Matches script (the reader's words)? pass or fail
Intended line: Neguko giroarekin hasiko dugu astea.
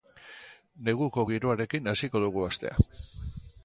pass